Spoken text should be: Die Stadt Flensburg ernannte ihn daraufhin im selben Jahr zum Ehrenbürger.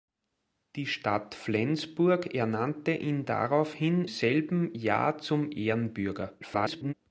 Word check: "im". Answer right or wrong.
wrong